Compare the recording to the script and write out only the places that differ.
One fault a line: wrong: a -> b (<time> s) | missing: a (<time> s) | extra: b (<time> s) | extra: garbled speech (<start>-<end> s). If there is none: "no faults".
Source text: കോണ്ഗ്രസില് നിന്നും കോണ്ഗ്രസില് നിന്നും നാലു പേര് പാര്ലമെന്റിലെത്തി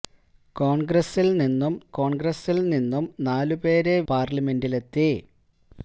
no faults